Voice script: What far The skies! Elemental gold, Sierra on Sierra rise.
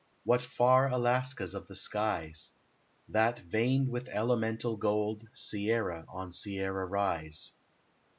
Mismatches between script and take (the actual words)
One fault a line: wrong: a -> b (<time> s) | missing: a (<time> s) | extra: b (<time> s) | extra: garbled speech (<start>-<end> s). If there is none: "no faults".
extra: Alaskas of (0.9 s)
extra: That veined with (3.1 s)